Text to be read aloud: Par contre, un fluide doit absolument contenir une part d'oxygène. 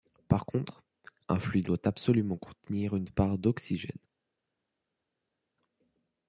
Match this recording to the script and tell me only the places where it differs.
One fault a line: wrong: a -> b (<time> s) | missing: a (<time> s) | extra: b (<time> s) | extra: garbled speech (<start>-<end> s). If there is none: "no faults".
no faults